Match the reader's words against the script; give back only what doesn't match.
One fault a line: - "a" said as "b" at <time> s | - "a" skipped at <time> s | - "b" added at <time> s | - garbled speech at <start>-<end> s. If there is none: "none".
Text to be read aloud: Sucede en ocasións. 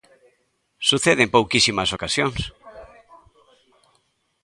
- "pouquísimas" added at 1.4 s